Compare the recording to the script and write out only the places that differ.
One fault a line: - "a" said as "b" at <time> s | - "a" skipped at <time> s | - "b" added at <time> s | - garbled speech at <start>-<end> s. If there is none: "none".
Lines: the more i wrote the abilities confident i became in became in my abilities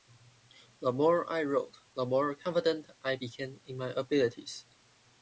- "abilities" said as "more" at 2.1 s
- "became in" skipped at 3.8 s